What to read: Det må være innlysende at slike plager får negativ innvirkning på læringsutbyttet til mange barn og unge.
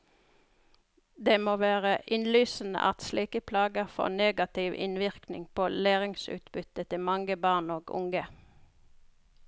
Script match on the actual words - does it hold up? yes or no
yes